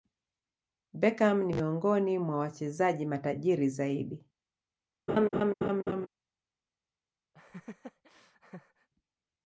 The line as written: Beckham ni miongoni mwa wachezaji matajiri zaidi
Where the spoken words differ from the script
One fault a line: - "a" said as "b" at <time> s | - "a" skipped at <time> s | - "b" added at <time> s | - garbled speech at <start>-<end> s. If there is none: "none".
none